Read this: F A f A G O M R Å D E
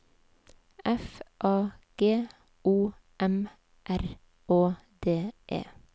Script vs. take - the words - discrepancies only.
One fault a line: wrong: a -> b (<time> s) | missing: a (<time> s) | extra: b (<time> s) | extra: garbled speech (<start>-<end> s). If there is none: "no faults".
missing: f A (1.7 s)